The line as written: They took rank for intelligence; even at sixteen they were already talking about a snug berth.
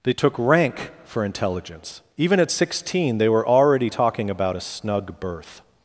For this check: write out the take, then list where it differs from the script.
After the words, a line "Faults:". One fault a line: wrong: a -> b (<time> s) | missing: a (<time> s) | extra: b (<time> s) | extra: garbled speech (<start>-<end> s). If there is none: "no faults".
They took rank for intelligence; even at sixteen they were already talking about a snug berth.
Faults:
no faults